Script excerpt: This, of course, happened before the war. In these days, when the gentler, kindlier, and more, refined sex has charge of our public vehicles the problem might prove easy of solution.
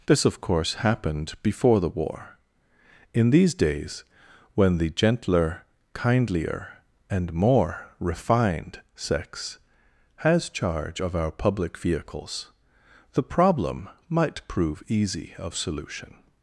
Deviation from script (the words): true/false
false